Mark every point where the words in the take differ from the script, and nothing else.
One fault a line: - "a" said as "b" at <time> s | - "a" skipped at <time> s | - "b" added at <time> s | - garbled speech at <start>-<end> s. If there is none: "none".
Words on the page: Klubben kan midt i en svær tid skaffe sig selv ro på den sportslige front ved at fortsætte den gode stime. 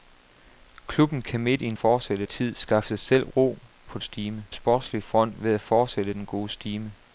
- "svær" said as "fortsætte" at 1.7 s
- "den" said as "stime" at 4.0 s